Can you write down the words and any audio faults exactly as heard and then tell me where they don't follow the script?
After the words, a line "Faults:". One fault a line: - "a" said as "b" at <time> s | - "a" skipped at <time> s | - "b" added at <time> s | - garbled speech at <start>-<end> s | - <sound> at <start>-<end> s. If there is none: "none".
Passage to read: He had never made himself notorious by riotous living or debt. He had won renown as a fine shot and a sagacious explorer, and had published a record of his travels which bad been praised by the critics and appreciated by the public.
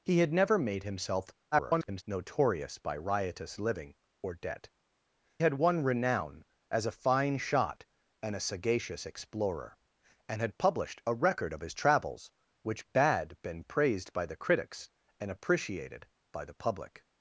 He had never made himself [garbled] notorious by riotous living or debt. Had won renown as a fine shot and a sagacious explorer, and had published a record of his travels which bad been praised by the critics and appreciated by the public.
Faults:
- garbled speech at 1.5-2.0 s
- "He" skipped at 4.7 s